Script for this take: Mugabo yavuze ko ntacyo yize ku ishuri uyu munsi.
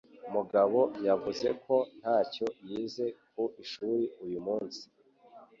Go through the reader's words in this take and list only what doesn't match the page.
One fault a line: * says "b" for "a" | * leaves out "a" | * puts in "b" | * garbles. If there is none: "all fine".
all fine